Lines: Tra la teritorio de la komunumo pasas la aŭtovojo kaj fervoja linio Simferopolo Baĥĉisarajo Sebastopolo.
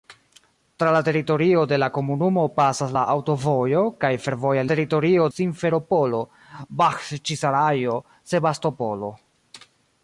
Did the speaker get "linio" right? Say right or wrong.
wrong